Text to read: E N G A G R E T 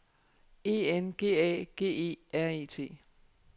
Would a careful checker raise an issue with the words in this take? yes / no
yes